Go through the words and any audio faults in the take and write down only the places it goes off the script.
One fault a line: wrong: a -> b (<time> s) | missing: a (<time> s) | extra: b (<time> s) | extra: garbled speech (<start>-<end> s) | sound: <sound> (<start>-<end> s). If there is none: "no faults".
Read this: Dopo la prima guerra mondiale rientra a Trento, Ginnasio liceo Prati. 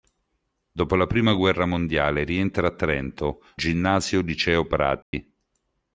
sound: dropout (5.0-5.1 s)